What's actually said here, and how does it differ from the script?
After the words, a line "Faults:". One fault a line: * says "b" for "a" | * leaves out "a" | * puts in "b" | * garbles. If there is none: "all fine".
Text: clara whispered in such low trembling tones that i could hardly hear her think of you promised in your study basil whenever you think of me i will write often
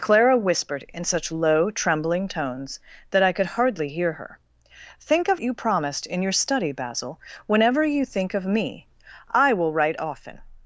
clara whispered in such low trembling tones that i could hardly hear her think of you promised in your study basil whenever you think of me i will write often
Faults:
all fine